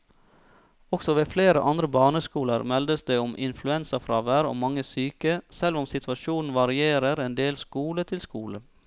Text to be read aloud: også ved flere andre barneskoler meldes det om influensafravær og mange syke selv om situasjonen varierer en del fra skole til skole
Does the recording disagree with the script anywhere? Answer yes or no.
yes